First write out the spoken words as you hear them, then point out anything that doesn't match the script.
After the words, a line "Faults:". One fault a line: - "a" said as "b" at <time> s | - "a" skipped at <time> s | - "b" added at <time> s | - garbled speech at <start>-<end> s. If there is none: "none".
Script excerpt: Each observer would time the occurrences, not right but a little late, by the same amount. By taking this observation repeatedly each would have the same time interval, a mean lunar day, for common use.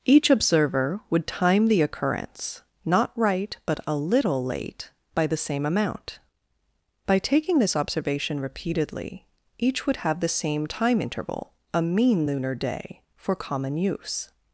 Each observer would time the occurrence, not right but a little late, by the same amount. By taking this observation repeatedly each would have the same time interval, a mean lunar day, for common use.
Faults:
- "occurrences" said as "occurrence" at 1.8 s